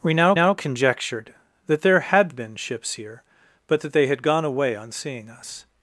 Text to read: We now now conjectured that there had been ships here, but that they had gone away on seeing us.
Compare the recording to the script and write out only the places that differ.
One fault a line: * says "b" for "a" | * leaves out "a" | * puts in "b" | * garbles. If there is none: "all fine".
all fine